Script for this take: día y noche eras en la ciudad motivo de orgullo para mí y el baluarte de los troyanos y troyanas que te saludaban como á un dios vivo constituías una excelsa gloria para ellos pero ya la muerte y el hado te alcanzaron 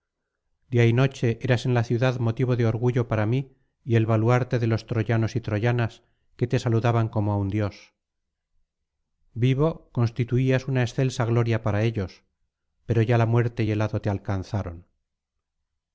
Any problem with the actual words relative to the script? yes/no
no